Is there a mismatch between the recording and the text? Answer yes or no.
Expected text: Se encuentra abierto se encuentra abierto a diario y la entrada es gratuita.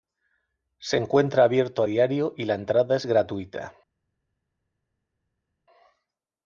yes